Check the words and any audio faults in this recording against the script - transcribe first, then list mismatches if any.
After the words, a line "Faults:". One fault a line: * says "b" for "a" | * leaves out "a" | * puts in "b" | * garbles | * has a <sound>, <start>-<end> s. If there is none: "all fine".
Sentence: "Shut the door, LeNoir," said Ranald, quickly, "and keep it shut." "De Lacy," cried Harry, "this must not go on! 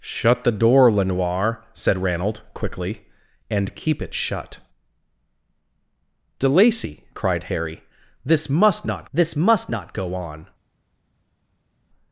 "Shut the door, LeNoir," said Ranald, quickly, "and keep it shut." "De Lacy," cried Harry, "this must not this must not go on!
Faults:
* puts in "this must not"